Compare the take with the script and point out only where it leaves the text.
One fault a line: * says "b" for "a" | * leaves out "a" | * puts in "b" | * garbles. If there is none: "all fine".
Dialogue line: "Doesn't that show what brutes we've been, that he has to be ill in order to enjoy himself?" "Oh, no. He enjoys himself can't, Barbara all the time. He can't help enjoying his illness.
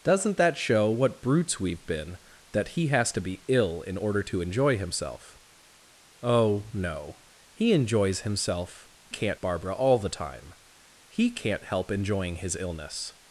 all fine